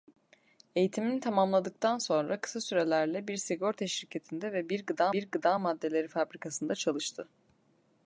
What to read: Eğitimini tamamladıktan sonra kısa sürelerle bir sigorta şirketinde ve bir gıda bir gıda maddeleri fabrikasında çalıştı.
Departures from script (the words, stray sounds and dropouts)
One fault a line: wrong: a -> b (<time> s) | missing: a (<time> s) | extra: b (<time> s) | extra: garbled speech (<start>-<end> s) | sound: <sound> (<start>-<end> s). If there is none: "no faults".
no faults